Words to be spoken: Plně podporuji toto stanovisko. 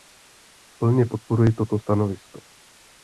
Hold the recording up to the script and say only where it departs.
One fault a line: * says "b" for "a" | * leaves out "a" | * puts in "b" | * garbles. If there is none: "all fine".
all fine